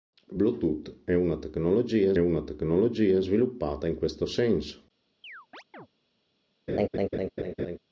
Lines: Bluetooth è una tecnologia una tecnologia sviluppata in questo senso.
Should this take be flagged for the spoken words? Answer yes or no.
no